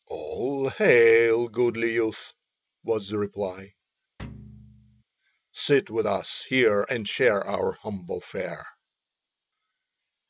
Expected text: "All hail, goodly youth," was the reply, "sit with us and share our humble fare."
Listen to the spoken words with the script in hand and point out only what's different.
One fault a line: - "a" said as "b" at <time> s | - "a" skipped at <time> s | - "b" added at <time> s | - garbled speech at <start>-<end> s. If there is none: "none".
- "here" added at 6.5 s